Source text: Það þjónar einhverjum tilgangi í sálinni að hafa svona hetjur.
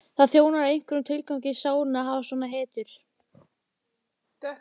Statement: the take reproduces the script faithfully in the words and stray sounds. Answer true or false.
true